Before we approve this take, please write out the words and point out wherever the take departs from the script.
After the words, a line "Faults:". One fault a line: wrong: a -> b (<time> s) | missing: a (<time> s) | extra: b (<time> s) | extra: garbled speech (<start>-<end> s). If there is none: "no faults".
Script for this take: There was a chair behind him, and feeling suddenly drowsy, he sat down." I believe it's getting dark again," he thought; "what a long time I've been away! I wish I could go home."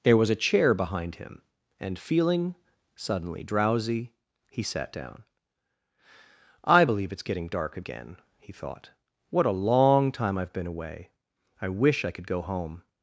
There was a chair behind him, and feeling suddenly drowsy, he sat down." I believe it's getting dark again," he thought; "what a long time I've been away! I wish I could go home."
Faults:
no faults